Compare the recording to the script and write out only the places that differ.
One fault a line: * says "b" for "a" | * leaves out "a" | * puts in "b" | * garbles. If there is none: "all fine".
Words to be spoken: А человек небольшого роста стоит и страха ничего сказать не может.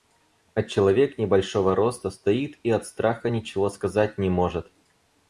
* puts in "от"